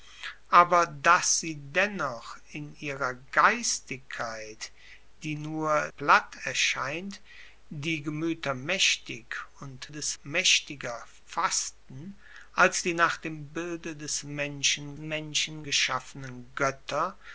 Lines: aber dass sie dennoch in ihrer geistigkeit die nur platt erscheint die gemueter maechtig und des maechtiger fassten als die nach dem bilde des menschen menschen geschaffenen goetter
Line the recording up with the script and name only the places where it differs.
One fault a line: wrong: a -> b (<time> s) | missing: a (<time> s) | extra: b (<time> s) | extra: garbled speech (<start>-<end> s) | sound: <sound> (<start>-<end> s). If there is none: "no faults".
no faults